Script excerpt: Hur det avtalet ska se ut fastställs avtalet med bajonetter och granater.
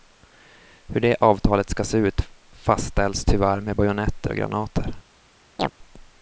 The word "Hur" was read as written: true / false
true